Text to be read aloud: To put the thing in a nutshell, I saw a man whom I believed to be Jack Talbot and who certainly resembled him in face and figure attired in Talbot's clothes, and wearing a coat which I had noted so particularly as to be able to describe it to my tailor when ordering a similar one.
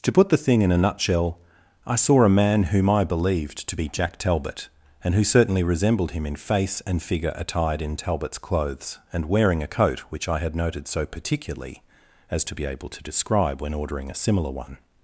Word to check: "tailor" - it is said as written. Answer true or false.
false